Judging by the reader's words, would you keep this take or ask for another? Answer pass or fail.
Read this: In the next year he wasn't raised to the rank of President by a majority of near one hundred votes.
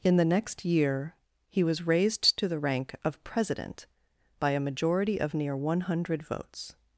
fail